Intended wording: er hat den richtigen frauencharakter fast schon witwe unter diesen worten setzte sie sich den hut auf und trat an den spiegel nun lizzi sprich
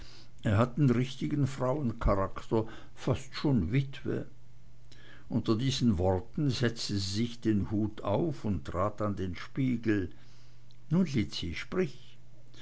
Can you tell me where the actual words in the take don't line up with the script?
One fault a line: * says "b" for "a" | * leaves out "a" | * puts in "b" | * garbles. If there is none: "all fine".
all fine